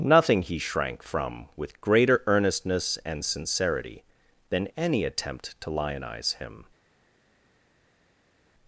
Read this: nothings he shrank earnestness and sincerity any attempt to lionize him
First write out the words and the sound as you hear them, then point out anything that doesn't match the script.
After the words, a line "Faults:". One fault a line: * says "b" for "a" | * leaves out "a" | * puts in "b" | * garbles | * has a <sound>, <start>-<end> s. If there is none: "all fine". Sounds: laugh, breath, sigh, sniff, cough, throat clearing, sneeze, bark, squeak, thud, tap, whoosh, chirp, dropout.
nothing he shrank from with greater earnestness and sincerity than any attempt to lionize him
Faults:
* says "nothing" for "nothings"
* puts in "from with greater"
* puts in "than"